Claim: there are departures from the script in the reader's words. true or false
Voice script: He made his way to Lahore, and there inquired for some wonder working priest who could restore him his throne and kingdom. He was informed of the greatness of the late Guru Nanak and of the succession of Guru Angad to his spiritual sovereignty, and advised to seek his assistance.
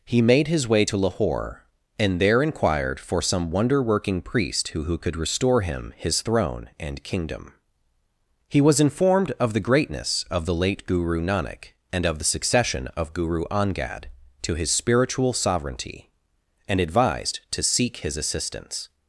true